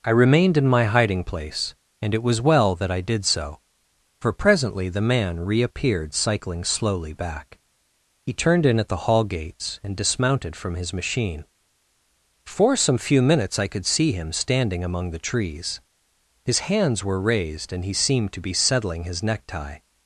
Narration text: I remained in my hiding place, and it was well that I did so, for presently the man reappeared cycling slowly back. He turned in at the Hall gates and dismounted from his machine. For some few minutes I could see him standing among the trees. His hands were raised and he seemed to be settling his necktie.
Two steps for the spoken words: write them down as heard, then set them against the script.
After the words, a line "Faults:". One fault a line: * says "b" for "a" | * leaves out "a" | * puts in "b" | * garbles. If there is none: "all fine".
I remained in my hiding place, and it was well that I did so, for presently the man reappeared cycling slowly back. He turned in at the Hall gates and dismounted from his machine. For some few minutes I could see him standing among the trees. His hands were raised and he seemed to be settling his necktie.
Faults:
all fine